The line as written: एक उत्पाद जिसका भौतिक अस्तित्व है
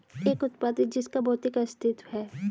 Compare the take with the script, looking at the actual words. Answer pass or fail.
pass